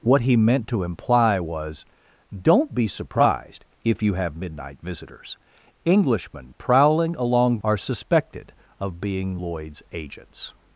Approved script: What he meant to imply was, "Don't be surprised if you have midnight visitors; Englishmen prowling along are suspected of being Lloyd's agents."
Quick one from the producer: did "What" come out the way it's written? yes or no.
yes